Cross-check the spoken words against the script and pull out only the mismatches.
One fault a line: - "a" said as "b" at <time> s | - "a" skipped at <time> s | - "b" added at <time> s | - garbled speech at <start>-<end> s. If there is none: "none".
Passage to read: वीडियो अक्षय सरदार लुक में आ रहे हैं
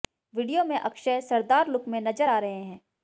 - "में" added at 0.6 s
- "नजर" added at 2.0 s